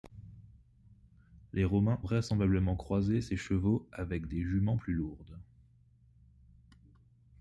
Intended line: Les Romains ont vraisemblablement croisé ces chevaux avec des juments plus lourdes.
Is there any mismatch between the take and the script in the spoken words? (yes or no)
yes